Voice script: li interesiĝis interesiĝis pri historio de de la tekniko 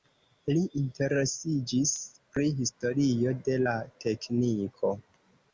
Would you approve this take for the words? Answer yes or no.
no